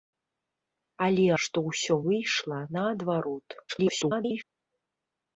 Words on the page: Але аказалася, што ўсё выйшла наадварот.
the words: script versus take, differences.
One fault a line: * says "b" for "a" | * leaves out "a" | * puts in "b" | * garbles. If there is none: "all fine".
* leaves out "аказалася"
* garbles